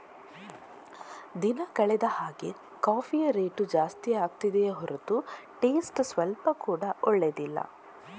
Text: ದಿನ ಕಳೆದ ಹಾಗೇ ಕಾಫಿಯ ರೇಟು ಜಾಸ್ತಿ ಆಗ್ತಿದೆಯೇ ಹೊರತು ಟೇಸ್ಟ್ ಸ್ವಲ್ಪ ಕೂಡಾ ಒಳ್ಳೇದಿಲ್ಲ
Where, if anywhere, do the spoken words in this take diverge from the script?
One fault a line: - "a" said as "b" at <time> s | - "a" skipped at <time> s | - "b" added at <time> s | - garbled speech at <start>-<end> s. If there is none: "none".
none